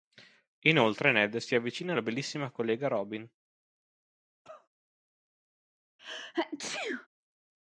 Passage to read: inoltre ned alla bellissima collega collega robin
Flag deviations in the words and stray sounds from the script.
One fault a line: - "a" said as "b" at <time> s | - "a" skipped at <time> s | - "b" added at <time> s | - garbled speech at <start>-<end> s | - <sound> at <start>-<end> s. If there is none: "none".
- "si avvicina" added at 1.4 s
- "collega" skipped at 2.9 s
- cough at 4.4-4.7 s
- sneeze at 6.0-7.1 s